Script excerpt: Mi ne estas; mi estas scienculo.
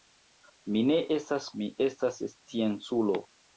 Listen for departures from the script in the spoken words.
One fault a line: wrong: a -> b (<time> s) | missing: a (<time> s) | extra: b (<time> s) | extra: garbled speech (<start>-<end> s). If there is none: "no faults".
no faults